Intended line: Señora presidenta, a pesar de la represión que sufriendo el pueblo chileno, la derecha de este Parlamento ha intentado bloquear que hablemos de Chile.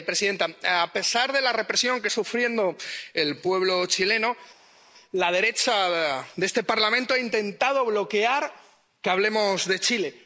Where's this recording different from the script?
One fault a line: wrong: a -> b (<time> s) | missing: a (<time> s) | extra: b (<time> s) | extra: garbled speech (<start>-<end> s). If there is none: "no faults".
no faults